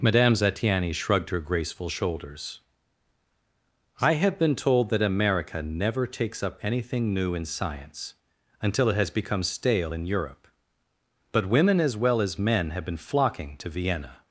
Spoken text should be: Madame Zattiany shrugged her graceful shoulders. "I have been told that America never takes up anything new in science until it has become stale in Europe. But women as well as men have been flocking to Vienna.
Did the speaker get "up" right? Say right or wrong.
right